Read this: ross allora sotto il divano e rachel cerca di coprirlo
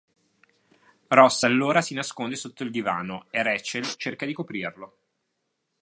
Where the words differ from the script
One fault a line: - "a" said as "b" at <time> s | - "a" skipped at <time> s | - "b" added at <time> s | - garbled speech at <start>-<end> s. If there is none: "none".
- "si nasconde" added at 1.8 s